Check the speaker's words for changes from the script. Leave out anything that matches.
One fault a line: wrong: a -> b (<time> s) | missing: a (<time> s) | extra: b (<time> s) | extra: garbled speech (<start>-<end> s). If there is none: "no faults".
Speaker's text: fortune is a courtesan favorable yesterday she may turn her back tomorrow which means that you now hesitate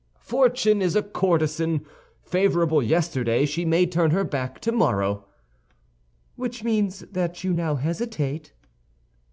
no faults